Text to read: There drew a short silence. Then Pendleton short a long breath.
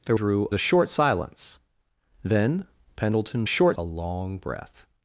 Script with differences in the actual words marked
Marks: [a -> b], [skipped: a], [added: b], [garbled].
There drew a short silence. Then Pendleton short a long breath.